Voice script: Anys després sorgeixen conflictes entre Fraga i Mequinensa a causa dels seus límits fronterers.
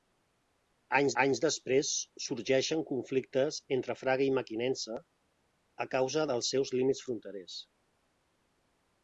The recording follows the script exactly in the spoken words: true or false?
false